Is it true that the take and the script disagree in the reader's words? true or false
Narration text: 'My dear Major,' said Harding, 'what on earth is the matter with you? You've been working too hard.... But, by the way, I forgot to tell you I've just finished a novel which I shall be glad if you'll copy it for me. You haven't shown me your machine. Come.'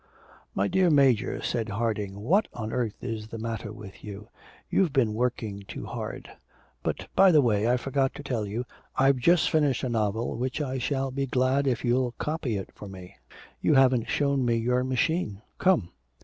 false